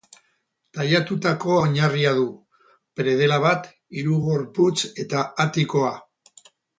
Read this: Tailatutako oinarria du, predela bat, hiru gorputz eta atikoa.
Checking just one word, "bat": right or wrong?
right